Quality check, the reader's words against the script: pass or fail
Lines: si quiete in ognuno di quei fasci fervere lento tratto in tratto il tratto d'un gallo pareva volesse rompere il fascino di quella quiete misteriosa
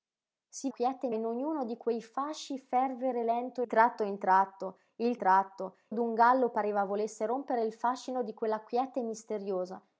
pass